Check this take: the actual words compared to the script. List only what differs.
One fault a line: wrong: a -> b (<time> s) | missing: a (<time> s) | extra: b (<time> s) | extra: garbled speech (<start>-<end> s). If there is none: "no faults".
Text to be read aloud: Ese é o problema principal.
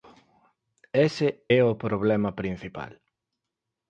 no faults